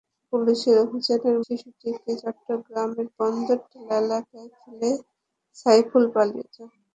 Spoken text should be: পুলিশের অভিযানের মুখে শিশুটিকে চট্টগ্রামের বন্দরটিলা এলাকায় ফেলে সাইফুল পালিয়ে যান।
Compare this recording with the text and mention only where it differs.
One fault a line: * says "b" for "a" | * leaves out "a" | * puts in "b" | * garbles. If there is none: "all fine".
* leaves out "মুখে"